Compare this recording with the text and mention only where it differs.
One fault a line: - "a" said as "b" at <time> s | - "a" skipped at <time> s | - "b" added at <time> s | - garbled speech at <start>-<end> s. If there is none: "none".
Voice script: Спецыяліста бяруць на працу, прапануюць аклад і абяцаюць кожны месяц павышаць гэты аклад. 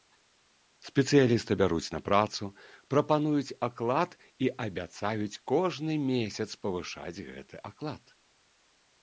none